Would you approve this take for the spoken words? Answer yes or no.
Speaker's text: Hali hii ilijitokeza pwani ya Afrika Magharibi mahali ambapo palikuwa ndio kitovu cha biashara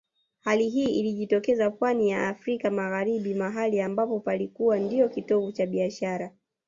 yes